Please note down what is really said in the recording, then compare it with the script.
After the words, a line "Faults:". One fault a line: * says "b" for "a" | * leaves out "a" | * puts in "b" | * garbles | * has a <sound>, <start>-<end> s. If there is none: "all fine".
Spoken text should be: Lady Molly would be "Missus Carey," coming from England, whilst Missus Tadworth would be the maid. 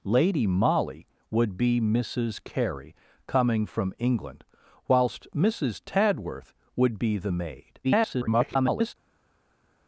Lady Molly would be "Missus Carey," coming from England, whilst Missus Tadworth would be the maid. [garbled]
Faults:
* garbles